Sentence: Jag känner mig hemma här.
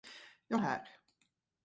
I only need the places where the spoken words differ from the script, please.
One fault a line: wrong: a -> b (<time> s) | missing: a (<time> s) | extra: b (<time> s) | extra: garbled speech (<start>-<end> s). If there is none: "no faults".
missing: känner mig hemma (0.6 s)